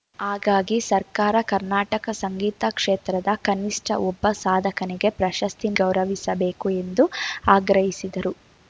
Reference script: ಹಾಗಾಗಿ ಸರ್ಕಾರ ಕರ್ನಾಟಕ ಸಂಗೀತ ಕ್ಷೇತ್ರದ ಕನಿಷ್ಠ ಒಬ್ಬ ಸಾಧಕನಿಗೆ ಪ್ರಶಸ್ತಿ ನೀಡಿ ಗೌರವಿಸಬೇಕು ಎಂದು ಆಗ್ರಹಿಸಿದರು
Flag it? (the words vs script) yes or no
yes